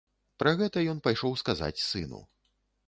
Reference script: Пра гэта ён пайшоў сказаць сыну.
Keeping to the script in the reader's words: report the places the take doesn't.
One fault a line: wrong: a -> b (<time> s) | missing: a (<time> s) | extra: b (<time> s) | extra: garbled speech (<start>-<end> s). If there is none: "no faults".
no faults